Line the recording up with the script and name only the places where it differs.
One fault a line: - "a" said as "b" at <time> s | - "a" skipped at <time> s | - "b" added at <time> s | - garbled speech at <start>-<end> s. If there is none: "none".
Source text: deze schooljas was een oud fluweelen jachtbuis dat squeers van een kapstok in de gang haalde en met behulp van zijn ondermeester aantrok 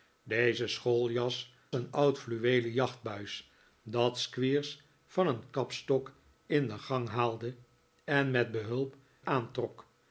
- "was" skipped at 1.5 s
- "van zijn ondermeester" skipped at 8.9 s